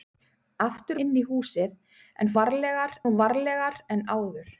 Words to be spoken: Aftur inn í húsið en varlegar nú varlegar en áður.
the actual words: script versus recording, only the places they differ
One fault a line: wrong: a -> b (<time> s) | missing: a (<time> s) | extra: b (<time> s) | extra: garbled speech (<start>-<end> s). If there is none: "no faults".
no faults